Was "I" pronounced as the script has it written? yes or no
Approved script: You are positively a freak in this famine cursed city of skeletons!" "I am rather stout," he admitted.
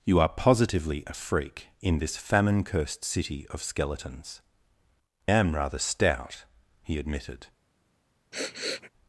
no